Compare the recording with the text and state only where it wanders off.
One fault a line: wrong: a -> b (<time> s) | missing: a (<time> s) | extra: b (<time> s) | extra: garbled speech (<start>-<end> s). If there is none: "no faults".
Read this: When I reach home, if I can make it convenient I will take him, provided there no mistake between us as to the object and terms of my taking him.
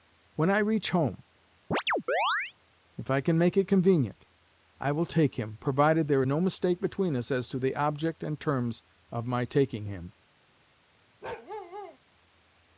no faults